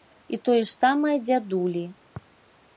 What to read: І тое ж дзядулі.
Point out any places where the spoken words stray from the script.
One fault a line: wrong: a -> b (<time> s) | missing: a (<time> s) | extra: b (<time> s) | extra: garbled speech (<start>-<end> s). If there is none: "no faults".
extra: самае (0.8 s)